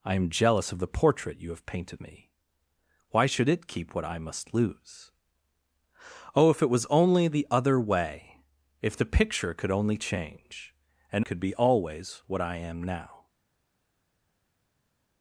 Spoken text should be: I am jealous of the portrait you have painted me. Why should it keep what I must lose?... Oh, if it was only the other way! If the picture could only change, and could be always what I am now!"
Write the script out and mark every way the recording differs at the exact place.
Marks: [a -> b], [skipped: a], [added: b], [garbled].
I am jealous of the portrait you have painted me. Why should it keep what I must lose?... Oh, if it was only the other way! If the picture could only change, and could be always what I am now!"